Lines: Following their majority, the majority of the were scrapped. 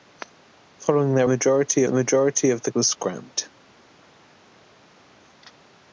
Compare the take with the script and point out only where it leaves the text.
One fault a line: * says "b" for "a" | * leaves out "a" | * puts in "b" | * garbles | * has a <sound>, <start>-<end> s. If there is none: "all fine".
all fine